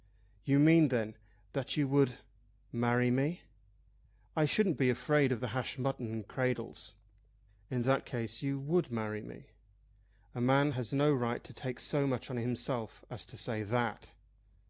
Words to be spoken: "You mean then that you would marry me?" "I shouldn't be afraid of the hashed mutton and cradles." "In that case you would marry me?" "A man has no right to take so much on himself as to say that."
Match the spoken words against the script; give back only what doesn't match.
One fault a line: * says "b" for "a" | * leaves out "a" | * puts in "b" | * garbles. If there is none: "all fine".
all fine